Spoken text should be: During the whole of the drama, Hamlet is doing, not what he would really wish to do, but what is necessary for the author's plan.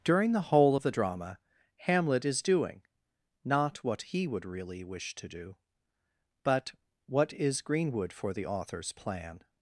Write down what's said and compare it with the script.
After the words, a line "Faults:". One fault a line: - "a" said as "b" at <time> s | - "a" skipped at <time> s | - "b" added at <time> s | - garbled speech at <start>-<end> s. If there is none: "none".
During the whole of the drama, Hamlet is doing, not what he would really wish to do, but what is greenwood for the author's plan.
Faults:
- "necessary" said as "greenwood" at 7.6 s